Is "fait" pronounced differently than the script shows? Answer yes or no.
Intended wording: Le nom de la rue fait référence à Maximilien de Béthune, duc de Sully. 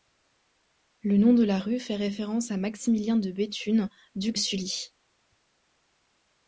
no